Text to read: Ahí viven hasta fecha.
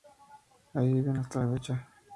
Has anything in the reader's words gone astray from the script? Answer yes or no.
yes